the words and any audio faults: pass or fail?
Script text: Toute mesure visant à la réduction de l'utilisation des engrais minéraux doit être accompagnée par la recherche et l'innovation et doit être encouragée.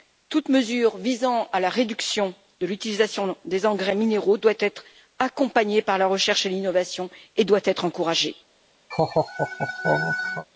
fail